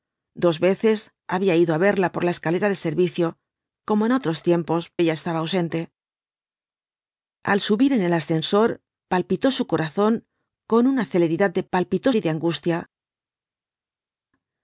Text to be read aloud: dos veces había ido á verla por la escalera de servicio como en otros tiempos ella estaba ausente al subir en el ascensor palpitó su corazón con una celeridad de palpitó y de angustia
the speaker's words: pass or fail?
pass